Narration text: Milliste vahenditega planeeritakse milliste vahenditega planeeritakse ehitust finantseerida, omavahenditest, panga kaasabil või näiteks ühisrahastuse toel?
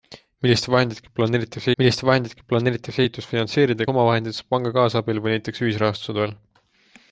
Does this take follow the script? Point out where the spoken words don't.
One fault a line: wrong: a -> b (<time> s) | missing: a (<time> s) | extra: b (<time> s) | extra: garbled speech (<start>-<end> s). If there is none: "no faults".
no faults